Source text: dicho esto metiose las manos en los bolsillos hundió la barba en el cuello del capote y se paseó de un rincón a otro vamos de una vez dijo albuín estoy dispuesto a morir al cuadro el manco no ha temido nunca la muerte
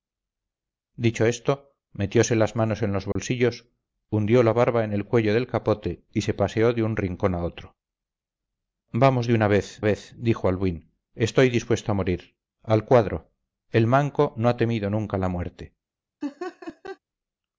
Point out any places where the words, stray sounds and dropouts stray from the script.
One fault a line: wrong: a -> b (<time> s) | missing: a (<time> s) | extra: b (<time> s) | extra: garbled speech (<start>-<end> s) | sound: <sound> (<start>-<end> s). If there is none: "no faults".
sound: dropout (3.1-3.2 s)
extra: vez (9.8 s)
sound: laugh (16.2-17.0 s)